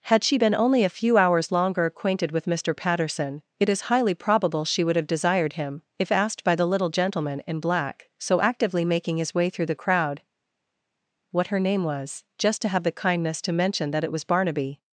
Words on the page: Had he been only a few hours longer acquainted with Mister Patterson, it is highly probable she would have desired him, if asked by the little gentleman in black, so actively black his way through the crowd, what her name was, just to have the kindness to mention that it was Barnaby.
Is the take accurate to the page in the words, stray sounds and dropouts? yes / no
no